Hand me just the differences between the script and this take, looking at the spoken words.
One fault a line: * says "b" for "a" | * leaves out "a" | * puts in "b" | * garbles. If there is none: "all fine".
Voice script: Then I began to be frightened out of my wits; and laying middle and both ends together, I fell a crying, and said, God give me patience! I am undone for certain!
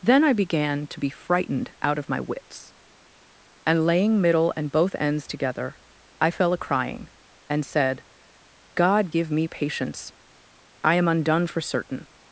all fine